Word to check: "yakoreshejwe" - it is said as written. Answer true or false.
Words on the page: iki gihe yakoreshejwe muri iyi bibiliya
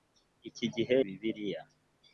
false